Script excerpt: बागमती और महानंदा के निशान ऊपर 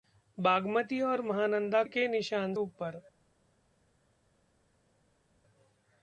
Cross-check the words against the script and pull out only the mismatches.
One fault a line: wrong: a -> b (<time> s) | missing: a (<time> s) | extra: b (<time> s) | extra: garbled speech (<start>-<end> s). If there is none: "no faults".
no faults